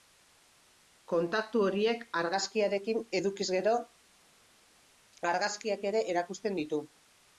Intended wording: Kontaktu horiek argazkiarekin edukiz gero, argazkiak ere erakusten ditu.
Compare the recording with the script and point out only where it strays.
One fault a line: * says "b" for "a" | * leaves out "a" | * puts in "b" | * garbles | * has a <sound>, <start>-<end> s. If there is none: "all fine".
all fine